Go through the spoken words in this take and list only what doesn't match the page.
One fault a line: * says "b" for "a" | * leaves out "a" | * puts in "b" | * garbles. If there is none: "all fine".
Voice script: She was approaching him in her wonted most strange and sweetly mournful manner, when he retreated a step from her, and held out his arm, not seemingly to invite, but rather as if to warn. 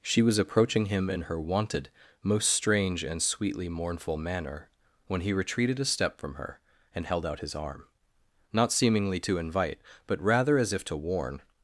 all fine